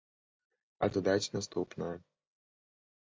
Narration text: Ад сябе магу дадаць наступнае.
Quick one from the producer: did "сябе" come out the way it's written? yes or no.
no